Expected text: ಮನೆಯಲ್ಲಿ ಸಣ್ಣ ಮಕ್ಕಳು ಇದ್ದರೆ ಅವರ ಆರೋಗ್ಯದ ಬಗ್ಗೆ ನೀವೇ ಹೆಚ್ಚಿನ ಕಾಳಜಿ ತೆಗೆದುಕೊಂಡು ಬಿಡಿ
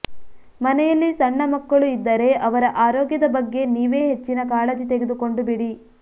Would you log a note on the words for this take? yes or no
no